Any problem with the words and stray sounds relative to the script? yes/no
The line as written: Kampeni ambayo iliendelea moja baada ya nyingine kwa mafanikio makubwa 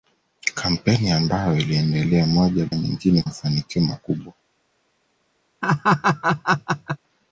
yes